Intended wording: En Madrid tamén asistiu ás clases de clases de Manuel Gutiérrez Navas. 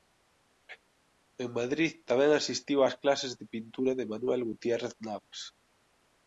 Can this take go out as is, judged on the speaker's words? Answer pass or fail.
fail